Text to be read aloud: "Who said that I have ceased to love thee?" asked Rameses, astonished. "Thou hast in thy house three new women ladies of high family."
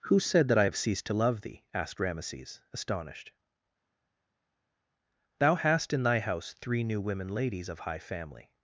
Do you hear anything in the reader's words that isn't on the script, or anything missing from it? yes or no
no